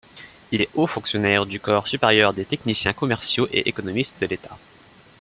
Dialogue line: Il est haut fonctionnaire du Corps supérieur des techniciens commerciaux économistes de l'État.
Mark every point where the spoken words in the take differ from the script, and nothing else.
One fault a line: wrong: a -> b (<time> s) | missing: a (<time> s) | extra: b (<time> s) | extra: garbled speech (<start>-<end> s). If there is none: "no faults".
extra: et (3.5 s)